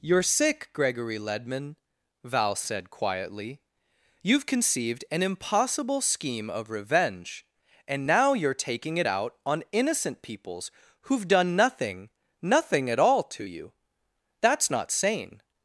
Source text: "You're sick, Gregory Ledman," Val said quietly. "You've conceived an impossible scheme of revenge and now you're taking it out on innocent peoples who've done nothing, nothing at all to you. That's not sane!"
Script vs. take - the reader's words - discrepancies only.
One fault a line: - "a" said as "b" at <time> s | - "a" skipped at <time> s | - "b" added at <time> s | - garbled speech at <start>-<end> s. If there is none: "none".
none